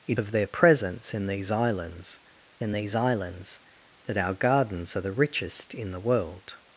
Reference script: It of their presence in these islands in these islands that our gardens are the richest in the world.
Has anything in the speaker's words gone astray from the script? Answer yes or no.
no